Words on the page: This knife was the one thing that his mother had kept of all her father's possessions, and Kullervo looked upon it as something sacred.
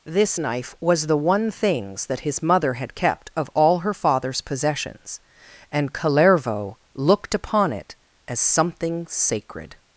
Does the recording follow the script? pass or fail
fail